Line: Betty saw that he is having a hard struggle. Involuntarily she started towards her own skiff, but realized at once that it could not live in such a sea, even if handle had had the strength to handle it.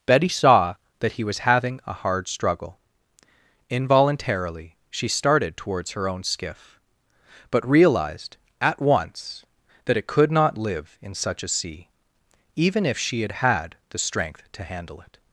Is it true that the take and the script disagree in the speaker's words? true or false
true